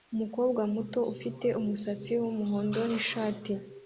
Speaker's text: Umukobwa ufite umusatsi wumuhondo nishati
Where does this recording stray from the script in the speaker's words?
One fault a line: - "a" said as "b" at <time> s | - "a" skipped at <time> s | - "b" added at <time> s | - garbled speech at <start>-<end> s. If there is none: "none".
- "muto" added at 0.7 s